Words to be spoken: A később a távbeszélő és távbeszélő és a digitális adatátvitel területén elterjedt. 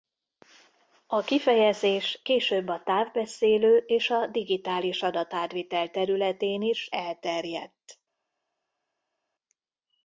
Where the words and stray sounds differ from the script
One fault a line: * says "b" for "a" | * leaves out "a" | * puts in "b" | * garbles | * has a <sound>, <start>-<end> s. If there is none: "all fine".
* puts in "kifejezés"
* leaves out "távbeszélő és"
* puts in "is"